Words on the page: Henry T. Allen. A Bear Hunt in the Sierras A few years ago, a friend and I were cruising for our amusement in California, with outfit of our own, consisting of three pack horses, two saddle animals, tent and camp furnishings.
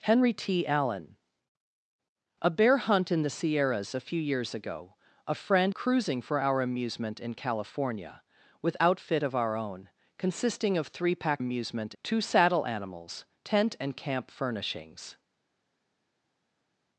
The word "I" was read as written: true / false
false